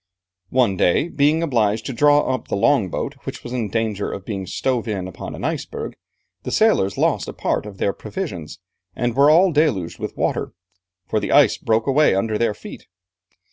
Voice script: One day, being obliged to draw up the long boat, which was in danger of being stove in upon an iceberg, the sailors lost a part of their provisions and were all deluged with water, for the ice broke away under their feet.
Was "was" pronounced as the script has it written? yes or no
yes